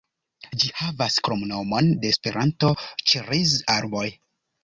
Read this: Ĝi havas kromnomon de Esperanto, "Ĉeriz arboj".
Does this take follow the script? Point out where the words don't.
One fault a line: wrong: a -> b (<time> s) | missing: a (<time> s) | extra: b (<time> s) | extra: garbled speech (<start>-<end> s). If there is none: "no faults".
no faults